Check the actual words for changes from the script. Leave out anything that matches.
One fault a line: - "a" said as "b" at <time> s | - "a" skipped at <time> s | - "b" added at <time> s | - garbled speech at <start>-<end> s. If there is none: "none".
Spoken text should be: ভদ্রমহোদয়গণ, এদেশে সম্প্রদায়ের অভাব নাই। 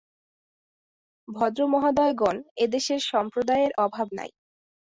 none